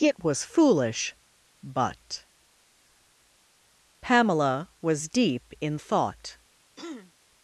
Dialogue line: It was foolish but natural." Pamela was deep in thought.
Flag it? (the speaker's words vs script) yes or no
yes